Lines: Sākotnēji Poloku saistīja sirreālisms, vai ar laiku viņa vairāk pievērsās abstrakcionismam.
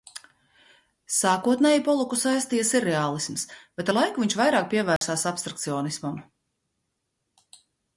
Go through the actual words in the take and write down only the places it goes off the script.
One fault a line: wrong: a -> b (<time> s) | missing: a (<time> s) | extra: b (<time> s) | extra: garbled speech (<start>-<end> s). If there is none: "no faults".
wrong: vai -> bet (3.8 s)
wrong: viņa -> viņš (4.3 s)